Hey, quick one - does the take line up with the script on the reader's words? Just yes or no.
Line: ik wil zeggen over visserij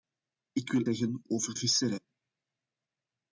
yes